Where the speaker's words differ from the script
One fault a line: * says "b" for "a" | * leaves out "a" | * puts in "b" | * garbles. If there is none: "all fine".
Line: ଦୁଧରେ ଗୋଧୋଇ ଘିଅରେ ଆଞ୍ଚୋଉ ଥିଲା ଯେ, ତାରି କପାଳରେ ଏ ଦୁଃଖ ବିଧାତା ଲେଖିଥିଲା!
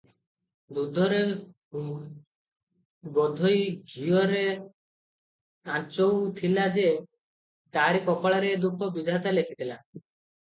all fine